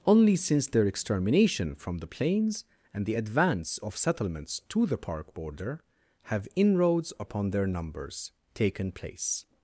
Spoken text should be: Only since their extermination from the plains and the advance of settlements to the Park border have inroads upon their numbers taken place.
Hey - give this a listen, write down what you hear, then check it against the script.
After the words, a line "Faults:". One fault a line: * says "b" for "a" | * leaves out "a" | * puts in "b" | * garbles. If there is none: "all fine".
Only since their extermination from the plains and the advance of settlements to the Park border have inroads upon their numbers taken place.
Faults:
all fine